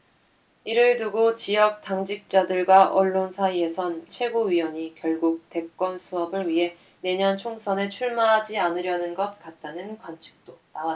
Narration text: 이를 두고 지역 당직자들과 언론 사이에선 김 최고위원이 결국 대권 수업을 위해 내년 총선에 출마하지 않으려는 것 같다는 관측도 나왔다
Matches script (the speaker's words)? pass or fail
fail